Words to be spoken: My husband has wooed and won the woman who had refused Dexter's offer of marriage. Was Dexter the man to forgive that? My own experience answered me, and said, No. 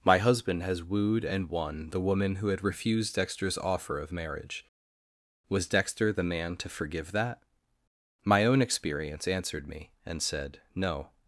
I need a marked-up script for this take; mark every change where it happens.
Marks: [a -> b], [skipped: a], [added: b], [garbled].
My husband has wooed and won the woman who had refused Dexter's offer of marriage. Was Dexter the man to forgive that? My own experience answered me, and said, No.